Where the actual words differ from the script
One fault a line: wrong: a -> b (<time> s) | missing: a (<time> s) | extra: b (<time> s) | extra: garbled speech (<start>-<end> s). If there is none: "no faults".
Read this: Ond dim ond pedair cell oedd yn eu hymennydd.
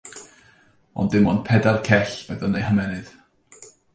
no faults